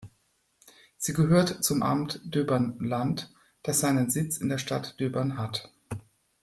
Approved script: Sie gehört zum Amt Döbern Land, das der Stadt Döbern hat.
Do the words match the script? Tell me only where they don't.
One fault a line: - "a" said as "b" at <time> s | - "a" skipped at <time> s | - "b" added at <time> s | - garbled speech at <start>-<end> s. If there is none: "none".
- "seinen Sitz in" added at 3.8 s